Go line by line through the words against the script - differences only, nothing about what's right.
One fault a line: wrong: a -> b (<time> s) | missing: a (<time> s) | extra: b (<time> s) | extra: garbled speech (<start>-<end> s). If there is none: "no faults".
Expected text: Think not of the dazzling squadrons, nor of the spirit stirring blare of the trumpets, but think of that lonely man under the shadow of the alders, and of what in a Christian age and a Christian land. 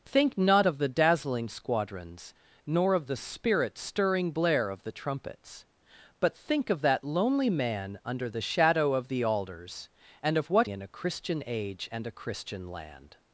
no faults